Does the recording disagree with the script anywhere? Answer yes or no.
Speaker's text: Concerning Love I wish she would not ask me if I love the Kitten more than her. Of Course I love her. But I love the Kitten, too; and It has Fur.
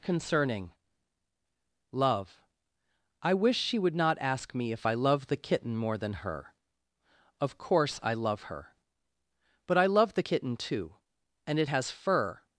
no